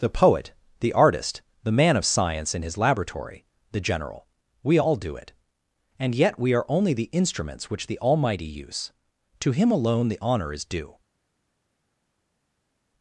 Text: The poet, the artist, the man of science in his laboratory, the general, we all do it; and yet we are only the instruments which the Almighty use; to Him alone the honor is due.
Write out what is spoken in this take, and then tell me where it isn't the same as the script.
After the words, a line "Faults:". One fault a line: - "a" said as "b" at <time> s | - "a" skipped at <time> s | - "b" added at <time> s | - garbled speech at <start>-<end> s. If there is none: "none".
The poet, the artist, the man of science in his laboratory, the general, we all do it; and yet we are only the instruments which the Almighty use; to Him alone the honor is due.
Faults:
none